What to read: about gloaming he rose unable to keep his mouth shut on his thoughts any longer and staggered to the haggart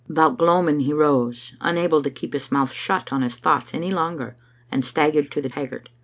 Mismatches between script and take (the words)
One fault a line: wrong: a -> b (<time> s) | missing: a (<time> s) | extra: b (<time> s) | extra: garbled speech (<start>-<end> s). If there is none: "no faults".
no faults